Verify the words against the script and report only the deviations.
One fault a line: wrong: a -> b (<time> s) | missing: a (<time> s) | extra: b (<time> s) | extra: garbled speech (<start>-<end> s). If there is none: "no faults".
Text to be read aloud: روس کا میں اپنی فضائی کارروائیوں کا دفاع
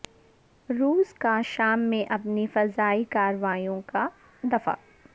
extra: شام (1.4 s)